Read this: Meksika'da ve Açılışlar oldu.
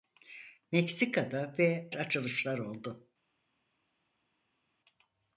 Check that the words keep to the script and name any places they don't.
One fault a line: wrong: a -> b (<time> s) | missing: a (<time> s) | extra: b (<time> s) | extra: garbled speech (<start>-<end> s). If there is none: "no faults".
no faults